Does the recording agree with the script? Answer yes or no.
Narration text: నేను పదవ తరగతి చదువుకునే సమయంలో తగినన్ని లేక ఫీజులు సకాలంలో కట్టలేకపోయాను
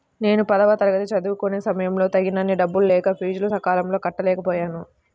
no